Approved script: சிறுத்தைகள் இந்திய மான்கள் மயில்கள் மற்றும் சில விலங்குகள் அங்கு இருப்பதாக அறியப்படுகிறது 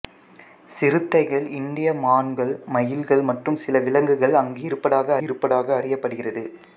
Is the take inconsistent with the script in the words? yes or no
yes